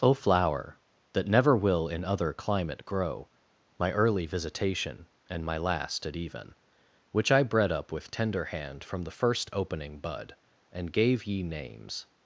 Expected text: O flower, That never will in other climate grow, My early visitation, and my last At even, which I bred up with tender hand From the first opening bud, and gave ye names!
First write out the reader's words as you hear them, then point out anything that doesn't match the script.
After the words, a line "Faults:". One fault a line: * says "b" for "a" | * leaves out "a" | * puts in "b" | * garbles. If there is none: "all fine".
O flower, That never will in other climate grow, My early visitation, and my last At even, which I bred up with tender hand From the first opening bud, and gave ye names!
Faults:
all fine